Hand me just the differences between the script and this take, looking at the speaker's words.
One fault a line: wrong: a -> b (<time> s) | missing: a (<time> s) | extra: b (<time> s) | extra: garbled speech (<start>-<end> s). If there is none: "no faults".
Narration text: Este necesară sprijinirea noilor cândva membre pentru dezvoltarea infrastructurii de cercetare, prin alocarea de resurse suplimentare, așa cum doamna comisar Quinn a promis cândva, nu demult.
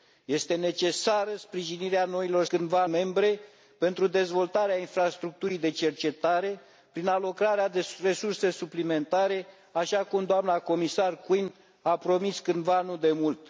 no faults